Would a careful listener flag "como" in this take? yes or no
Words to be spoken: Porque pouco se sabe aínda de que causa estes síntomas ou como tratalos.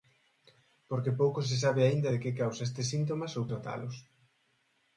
yes